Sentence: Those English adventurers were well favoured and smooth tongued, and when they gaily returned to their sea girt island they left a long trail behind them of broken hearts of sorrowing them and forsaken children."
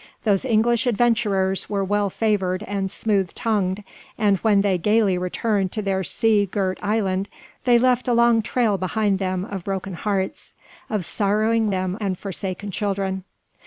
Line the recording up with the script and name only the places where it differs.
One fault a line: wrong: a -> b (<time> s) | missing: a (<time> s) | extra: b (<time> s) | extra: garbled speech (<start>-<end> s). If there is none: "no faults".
no faults